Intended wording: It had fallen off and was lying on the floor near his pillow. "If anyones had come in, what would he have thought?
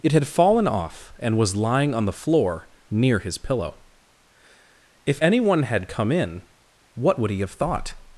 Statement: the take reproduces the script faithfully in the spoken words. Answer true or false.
false